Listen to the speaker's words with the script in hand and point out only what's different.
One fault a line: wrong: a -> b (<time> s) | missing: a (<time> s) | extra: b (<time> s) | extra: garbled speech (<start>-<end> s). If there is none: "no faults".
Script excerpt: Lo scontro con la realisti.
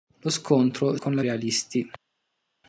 no faults